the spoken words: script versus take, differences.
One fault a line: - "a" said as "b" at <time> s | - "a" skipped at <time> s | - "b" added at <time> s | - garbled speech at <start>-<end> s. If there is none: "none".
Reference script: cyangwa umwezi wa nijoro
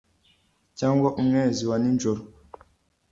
none